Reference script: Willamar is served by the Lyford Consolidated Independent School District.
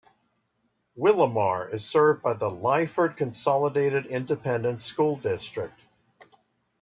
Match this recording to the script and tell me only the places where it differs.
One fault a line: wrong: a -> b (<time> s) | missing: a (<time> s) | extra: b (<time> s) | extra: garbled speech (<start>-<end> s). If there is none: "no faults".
no faults